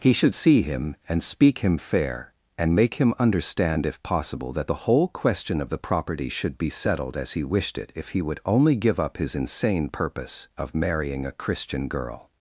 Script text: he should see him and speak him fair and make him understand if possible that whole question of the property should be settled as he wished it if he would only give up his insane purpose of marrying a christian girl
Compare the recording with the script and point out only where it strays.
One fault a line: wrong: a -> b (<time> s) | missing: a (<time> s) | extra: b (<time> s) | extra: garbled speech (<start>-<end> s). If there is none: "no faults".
extra: the (4.7 s)